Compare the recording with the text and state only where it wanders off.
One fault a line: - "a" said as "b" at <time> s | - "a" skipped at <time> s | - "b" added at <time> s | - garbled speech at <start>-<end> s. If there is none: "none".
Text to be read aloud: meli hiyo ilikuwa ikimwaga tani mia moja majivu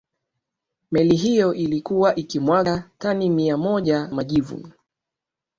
none